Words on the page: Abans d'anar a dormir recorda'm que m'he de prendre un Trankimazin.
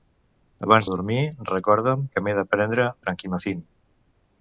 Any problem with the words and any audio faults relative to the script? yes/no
yes